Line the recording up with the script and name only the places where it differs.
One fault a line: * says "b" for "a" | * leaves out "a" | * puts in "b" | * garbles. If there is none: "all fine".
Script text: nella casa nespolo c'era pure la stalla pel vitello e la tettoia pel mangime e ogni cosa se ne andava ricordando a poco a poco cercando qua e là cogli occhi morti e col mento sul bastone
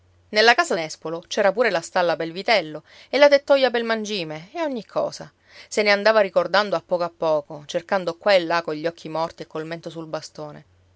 all fine